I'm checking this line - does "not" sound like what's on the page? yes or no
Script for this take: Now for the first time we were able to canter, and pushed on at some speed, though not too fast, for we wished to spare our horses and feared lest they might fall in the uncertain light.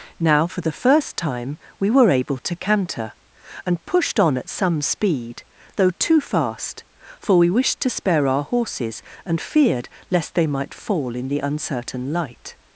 no